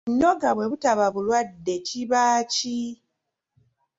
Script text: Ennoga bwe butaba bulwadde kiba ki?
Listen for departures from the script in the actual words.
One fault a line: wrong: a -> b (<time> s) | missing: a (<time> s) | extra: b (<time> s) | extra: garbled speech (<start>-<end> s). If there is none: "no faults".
no faults